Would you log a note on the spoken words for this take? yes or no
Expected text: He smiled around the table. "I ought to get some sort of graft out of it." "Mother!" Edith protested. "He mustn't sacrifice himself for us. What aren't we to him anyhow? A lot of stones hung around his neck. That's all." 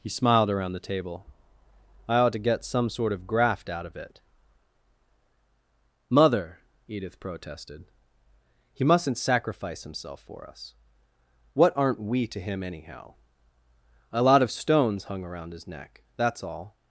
no